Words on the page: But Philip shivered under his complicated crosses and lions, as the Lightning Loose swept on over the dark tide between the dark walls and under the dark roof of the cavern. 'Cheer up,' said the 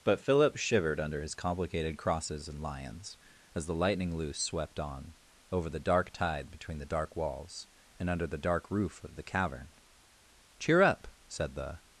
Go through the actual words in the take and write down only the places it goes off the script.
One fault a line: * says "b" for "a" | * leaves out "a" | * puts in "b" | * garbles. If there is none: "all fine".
all fine